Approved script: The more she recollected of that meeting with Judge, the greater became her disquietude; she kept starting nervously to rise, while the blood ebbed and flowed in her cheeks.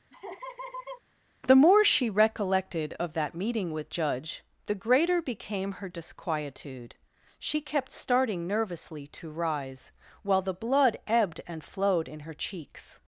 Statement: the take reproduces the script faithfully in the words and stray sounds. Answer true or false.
false